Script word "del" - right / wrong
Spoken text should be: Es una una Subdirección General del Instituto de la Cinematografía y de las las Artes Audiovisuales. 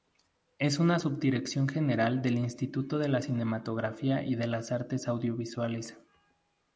right